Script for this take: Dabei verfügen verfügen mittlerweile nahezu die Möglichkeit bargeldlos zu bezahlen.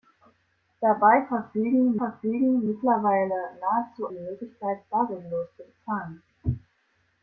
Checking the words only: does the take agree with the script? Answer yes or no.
yes